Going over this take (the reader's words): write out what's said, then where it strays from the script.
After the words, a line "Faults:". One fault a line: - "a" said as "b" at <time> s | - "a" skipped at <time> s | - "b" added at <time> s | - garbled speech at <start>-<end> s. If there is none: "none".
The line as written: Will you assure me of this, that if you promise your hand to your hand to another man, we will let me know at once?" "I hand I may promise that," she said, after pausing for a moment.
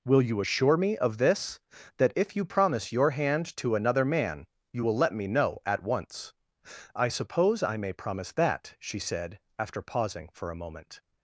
Will you assure me of this, that if you promise your hand to another man, you will let me know at once?" "I suppose I may promise that," she said, after pausing for a moment.
Faults:
- "your hand to" skipped at 3.7 s
- "we" said as "you" at 4.7 s
- "hand" said as "suppose" at 7.1 s